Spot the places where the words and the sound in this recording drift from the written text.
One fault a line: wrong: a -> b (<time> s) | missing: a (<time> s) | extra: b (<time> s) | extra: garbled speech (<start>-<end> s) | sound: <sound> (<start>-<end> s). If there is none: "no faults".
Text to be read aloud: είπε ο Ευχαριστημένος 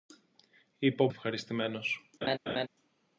sound: laugh (2.2-2.7 s)